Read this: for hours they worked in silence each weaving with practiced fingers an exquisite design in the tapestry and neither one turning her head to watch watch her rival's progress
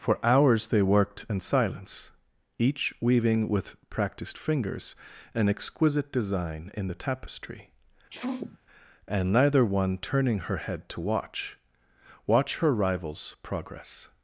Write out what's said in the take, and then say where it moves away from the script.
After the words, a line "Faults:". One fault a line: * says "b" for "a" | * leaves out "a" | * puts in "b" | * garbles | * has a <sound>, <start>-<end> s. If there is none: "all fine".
for hours they worked in silence each weaving with practiced fingers an exquisite design in the tapestry and neither one turning her head to watch watch her rival's progress
Faults:
* has a sneeze, 8.1-8.6 s